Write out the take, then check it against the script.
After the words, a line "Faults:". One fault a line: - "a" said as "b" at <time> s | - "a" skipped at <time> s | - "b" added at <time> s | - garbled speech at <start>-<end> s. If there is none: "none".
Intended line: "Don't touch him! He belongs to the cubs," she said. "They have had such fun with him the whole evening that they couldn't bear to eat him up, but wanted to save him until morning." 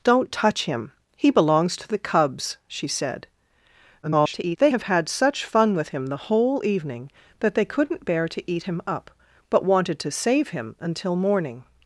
"Don't touch him! He belongs to the cubs," she said. [garbled] "They have had such fun with him the whole evening that they couldn't bear to eat him up, but wanted to save him until morning."
Faults:
- garbled speech at 4.0-4.6 s